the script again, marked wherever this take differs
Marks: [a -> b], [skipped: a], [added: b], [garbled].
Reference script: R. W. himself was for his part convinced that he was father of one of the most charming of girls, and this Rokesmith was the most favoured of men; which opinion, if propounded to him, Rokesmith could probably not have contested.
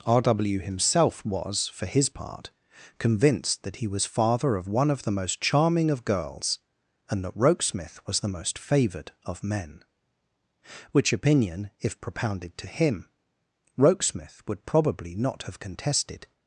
R. W. himself was for his part convinced that he was father of one of the most charming of girls, and [this -> that] Rokesmith was the most favoured of men; which opinion, if propounded to him, Rokesmith [could -> would] probably not have contested.